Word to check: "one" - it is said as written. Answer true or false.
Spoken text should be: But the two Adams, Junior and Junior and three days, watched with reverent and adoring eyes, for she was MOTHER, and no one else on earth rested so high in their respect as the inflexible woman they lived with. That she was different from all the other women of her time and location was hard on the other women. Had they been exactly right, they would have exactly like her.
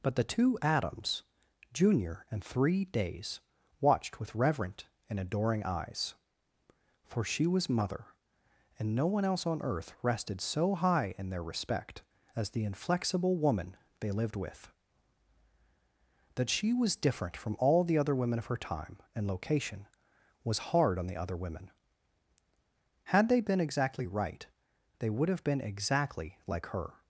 true